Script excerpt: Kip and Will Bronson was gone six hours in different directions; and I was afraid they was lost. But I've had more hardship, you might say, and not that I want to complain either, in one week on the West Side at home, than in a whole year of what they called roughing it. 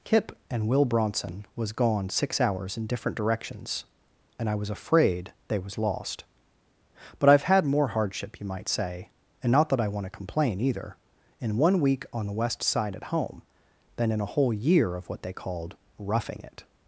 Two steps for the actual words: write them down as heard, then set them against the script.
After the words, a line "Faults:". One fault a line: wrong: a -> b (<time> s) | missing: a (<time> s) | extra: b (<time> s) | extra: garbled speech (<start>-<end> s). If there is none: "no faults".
Kip and Will Bronson was gone six hours in different directions; and I was afraid they was lost. But I've had more hardship, you might say, and not that I want to complain either, in one week on the West Side at home, than in a whole year of what they called roughing it.
Faults:
no faults